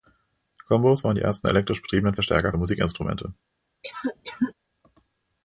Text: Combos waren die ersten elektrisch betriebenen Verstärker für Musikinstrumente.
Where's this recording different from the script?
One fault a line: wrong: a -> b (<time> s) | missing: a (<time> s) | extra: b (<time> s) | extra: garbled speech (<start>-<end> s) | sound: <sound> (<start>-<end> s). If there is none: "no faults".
sound: cough (3.8-4.5 s)